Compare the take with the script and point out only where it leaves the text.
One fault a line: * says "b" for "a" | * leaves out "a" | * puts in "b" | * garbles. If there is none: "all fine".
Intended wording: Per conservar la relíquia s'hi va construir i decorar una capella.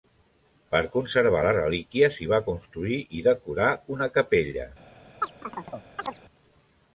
all fine